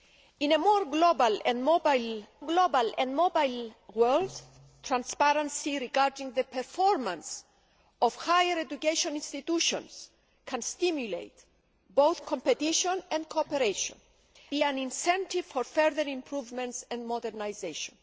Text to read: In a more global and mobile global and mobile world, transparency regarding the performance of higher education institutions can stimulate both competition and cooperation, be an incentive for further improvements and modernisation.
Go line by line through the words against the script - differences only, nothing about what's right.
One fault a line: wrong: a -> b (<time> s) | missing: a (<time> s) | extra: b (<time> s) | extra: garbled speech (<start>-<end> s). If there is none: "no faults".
no faults